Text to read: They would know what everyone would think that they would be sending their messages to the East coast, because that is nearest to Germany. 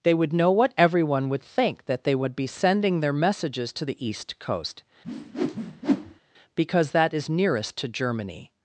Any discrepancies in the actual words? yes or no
no